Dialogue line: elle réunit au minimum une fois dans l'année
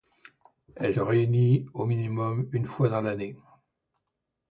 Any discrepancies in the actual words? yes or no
no